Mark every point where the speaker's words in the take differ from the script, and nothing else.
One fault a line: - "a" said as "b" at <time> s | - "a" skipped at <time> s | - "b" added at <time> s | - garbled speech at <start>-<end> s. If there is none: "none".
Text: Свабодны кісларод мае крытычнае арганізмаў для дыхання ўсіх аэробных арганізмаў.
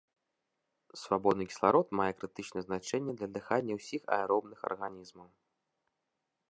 - "арганізмаў" said as "значэнне" at 2.7 s